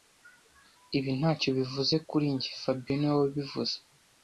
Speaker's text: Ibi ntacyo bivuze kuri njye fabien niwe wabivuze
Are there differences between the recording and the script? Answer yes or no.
no